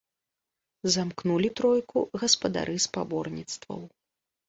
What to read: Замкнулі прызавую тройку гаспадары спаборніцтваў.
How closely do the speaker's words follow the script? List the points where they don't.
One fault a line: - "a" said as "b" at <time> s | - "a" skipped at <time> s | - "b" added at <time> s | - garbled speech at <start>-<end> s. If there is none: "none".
- "прызавую" skipped at 1.5 s